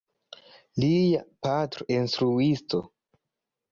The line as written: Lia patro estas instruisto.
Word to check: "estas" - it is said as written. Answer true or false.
false